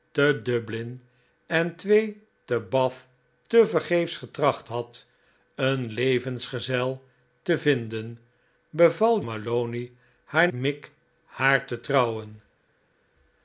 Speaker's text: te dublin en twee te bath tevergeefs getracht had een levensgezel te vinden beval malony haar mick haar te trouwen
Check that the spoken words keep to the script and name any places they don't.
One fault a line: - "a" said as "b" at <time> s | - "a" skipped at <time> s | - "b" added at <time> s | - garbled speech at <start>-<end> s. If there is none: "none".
none